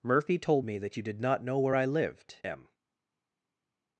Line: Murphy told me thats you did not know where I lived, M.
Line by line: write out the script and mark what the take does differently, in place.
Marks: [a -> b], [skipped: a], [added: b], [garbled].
Murphy told me [thats -> that] you did not know where I lived, M.